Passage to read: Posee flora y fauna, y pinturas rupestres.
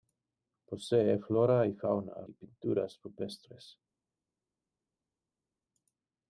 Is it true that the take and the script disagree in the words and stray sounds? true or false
false